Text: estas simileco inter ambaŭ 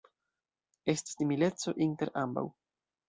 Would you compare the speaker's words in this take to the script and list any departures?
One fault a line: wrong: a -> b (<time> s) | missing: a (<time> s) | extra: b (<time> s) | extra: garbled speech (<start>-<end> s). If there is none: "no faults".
no faults